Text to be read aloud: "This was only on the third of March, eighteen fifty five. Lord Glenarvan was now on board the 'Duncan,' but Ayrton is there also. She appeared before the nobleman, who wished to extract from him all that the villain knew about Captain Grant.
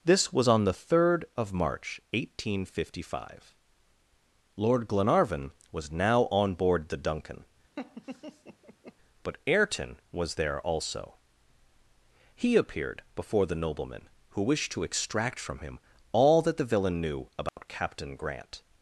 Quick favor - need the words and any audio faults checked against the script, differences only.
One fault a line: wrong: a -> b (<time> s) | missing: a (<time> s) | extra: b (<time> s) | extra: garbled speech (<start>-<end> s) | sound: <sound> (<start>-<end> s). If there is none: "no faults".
missing: only (0.5 s)
sound: laugh (7.8-8.9 s)
wrong: is -> was (10.1 s)
wrong: She -> He (12.3 s)
sound: dropout (17.5-17.6 s)